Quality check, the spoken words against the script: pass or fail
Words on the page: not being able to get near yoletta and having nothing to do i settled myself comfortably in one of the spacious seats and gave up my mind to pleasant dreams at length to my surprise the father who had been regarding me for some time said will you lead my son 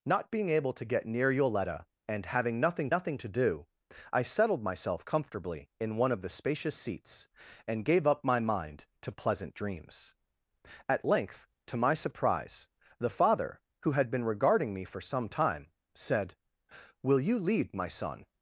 fail